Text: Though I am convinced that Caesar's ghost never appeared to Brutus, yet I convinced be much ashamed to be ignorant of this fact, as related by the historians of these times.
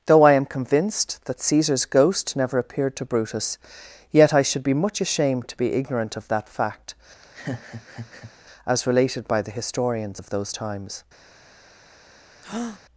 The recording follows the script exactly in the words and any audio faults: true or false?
false